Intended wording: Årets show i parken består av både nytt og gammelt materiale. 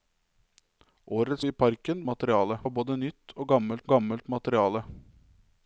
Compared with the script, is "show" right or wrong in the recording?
wrong